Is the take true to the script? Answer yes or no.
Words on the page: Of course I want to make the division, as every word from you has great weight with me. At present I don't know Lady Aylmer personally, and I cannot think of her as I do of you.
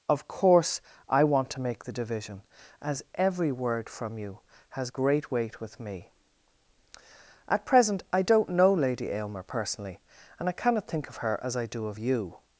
yes